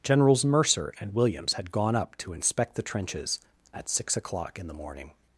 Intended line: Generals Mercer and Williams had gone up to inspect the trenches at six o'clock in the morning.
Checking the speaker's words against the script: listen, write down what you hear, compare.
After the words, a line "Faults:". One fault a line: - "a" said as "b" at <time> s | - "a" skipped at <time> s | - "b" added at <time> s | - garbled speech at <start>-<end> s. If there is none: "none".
Generals Mercer and Williams had gone up to inspect the trenches at six o'clock in the morning.
Faults:
none